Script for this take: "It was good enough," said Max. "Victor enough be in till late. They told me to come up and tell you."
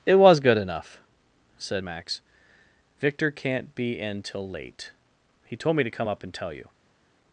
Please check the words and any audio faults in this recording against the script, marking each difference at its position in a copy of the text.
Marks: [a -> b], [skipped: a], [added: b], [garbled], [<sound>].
"It was good enough," said Max. "Victor [enough -> can't] be in till late. [They -> He] told me to come up and tell you."